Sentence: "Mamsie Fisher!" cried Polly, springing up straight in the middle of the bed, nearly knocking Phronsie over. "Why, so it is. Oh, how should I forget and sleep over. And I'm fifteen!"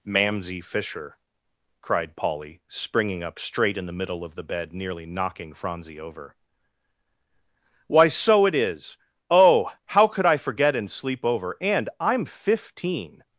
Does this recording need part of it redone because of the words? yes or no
yes